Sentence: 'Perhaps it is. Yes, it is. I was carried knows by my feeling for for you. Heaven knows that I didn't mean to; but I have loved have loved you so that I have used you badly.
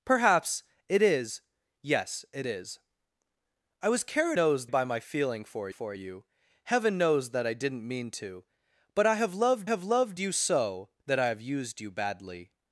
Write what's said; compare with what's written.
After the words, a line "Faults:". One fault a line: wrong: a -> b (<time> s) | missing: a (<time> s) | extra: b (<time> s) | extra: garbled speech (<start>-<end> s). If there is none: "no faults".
'Perhaps it is. Yes, it is. I was carried knows by my feeling for for you. Heaven knows that I didn't mean to; but I have loved have loved you so that I have used you badly.
Faults:
no faults